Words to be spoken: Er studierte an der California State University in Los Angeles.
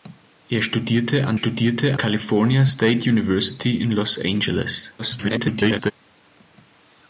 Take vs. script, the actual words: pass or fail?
fail